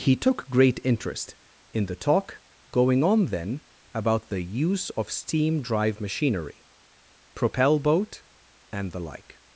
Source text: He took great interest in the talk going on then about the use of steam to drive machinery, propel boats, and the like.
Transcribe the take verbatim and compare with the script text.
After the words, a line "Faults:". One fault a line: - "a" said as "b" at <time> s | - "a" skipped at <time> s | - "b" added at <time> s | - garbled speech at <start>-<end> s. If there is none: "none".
He took great interest in the talk going on then about the use of steam drive machinery, propel boat, and the like.
Faults:
- "to" skipped at 5.6 s
- "boats" said as "boat" at 7.8 s